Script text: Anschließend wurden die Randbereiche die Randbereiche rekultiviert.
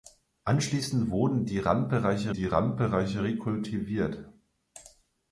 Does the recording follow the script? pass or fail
pass